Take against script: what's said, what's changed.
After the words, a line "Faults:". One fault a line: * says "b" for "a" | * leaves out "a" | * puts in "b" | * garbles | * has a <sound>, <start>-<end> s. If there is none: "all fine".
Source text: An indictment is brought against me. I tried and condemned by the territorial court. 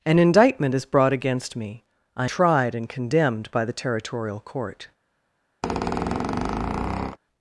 An indictment is brought against me. I tried and condemned by the territorial court.
Faults:
* has a squeak, 5.6-7.2 s